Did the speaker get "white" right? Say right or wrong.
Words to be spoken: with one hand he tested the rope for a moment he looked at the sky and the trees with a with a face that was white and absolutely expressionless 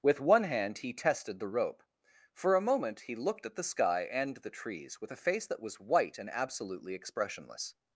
right